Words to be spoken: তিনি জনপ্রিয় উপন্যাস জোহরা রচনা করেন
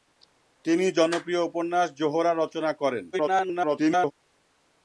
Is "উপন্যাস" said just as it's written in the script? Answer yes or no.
yes